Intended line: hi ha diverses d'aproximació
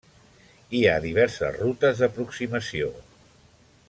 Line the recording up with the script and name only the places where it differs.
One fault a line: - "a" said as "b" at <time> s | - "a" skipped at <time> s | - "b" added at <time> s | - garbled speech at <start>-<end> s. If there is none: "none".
- "rutes" added at 1.6 s